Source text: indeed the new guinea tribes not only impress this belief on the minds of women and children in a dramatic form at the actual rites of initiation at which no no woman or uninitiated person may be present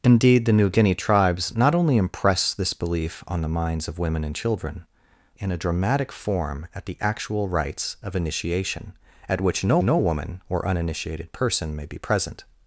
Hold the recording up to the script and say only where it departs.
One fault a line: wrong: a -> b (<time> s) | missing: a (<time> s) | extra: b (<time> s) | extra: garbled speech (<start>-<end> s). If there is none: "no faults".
no faults